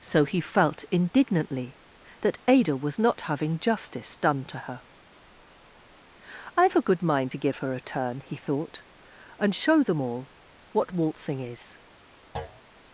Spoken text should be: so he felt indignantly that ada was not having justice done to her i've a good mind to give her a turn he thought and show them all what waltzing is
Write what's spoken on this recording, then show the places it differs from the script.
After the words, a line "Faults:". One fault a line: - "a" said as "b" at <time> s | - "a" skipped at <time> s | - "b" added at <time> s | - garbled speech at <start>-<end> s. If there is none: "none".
so he felt indignantly that ada was not having justice done to her i've a good mind to give her a turn he thought and show them all what waltzing is
Faults:
none